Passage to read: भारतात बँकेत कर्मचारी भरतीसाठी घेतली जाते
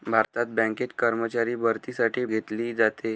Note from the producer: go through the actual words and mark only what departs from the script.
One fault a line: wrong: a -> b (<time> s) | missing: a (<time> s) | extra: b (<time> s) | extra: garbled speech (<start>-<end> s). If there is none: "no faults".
no faults